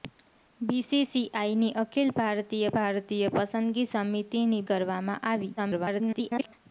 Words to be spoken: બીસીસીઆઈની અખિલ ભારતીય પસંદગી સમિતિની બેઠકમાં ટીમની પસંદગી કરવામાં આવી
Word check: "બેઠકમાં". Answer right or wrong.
wrong